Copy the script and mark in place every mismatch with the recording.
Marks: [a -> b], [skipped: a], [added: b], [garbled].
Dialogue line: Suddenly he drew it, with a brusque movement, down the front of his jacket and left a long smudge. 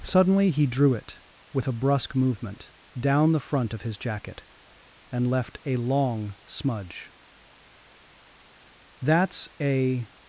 Suddenly he drew it, with a brusque movement, down the front of his jacket and left a long smudge. [added: That's a]